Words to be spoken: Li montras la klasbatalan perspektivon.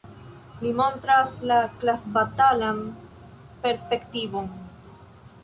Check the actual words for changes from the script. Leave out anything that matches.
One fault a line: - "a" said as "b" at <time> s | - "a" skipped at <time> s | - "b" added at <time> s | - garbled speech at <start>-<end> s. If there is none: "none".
none